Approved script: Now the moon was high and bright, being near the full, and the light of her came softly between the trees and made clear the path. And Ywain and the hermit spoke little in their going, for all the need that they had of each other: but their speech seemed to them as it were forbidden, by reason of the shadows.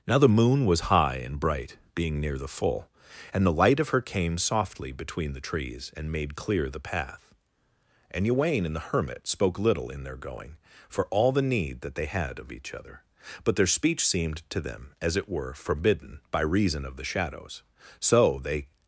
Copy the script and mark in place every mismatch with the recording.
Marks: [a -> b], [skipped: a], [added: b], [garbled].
Now the moon was high and bright, being near the full, and the light of her came softly between the trees and made clear the path. And Ywain and the hermit spoke little in their going, for all the need that they had of each other: but their speech seemed to them as it were forbidden, by reason of the shadows. [added: So they]